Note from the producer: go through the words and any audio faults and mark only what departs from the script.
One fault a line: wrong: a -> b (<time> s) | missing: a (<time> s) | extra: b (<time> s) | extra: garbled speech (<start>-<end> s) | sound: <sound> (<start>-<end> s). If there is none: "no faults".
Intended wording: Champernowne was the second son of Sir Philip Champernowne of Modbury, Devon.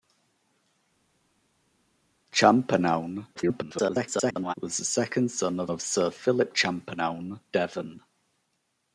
extra: garbled speech (3.3-4.5 s)
extra: of (5.7 s)
missing: of Modbury (7.4 s)